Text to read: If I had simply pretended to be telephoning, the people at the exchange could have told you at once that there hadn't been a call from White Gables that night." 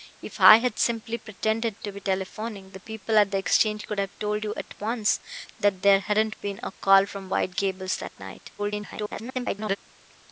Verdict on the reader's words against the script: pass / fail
fail